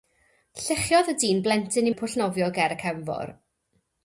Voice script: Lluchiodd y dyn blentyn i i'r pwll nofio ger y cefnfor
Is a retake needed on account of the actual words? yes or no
no